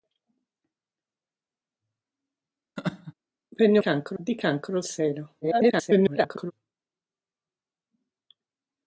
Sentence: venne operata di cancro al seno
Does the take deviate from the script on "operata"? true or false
true